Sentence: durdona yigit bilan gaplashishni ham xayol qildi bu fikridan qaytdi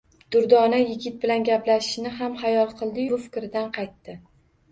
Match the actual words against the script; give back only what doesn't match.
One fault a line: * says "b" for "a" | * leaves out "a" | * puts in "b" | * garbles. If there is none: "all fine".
all fine